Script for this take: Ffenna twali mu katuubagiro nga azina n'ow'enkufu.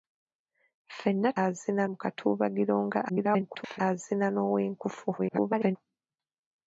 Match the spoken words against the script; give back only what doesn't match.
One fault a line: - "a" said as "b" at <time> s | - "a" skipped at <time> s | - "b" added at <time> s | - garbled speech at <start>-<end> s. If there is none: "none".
- "twali" said as "azina" at 1.4 s
- garbled speech at 3.1-3.8 s
- garbled speech at 5.2-5.8 s